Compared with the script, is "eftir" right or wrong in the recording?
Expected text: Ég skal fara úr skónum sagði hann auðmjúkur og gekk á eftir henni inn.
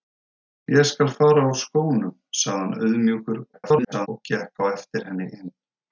right